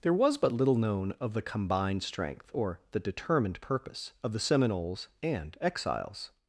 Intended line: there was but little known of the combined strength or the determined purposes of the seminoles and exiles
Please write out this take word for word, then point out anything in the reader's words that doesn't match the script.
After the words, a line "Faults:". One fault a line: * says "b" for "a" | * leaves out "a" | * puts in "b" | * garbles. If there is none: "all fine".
there was but little known of the combined strength or the determined purpose of the seminoles and exiles
Faults:
* says "purpose" for "purposes"